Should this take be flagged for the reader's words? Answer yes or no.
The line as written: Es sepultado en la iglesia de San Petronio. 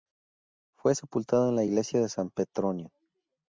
yes